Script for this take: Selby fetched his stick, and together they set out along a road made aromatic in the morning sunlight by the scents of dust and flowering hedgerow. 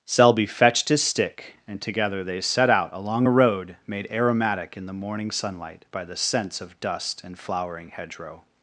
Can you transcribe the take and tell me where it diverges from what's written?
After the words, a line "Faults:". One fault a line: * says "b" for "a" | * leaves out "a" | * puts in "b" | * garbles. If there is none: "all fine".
Selby fetched his stick, and together they set out along a road made aromatic in the morning sunlight by the scents of dust and flowering hedgerow.
Faults:
all fine